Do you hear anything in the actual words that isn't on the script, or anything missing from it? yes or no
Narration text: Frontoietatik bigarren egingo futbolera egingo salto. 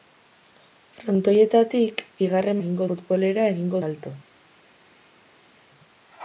no